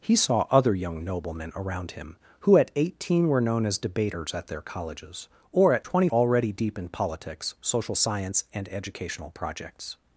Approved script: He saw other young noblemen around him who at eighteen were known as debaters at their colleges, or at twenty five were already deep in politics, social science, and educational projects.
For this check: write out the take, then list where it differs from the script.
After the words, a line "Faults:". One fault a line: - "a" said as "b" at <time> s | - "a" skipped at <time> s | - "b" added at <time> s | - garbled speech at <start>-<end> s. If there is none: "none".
He saw other young noblemen around him who at eighteen were known as debaters at their colleges, or at twenty already deep in politics, social science, and educational projects.
Faults:
- "five were" skipped at 6.1 s